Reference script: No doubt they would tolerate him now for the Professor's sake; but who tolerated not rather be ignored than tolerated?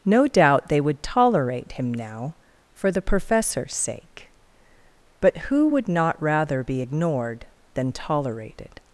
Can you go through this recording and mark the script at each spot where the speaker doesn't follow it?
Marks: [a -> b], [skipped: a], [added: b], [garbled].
No doubt they would tolerate him now for the Professor's sake; but who [tolerated -> would] not rather be ignored than tolerated?